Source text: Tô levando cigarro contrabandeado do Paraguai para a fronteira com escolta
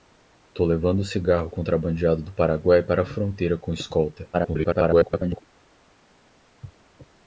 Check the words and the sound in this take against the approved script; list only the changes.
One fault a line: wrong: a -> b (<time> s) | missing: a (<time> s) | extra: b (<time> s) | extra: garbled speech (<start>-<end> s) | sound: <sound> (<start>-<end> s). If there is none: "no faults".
extra: garbled speech (4.3-5.4 s)